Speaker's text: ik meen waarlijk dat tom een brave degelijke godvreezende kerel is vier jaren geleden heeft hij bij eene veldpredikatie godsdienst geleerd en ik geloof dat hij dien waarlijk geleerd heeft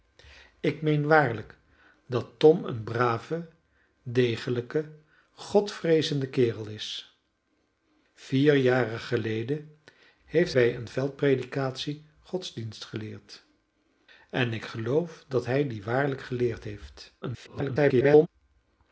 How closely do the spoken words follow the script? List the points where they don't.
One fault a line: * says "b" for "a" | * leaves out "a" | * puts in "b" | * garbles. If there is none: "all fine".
* leaves out "hij"
* garbles